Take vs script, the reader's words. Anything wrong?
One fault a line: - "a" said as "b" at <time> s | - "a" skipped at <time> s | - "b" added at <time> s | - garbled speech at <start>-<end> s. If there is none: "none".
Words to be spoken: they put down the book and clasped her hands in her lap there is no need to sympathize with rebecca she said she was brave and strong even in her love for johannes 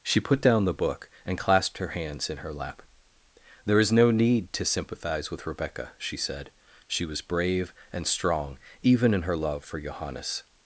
- "they" said as "she" at 0.0 s